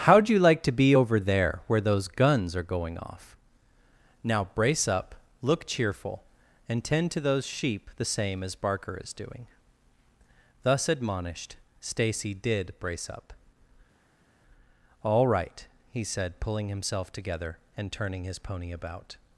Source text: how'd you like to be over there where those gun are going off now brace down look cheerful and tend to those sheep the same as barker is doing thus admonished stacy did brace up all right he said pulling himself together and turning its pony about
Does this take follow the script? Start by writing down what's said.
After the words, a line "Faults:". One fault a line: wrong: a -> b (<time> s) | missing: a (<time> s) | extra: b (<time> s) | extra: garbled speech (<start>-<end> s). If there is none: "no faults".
how'd you like to be over there where those guns are going off now brace up look cheerful and tend to those sheep the same as barker is doing thus admonished stacy did brace up all right he said pulling himself together and turning his pony about
Faults:
wrong: gun -> guns (2.1 s)
wrong: down -> up (4.9 s)
wrong: its -> his (18.2 s)